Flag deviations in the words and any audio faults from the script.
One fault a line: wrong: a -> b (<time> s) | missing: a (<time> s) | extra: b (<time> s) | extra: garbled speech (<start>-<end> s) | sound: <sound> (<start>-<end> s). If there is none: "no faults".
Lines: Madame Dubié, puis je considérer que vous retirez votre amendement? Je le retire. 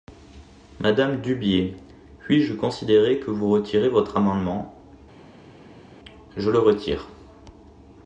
no faults